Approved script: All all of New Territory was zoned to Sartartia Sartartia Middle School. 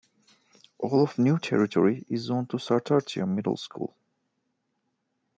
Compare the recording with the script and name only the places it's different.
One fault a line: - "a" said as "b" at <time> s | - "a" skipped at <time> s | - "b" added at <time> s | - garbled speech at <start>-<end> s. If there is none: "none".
- "all" skipped at 1.0 s
- "was" said as "is" at 2.1 s
- "Sartartia" skipped at 3.3 s